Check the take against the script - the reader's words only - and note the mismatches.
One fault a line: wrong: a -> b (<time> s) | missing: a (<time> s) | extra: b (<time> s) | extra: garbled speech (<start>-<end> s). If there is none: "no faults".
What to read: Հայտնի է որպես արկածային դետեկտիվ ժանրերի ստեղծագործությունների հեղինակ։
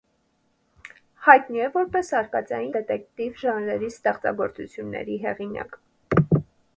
no faults